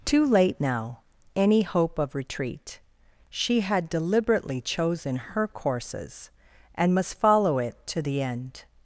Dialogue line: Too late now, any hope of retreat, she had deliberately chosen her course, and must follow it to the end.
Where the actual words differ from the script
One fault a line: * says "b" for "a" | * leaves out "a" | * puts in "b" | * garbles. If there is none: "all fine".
* says "courses" for "course"